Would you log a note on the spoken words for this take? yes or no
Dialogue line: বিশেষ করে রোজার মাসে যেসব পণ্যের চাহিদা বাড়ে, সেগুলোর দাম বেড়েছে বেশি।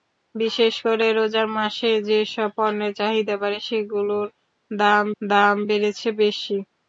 yes